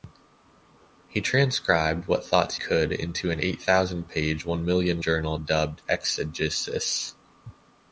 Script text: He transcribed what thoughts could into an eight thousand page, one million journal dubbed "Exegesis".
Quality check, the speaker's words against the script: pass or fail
pass